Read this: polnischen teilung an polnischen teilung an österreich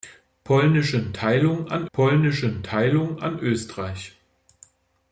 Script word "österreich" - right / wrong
right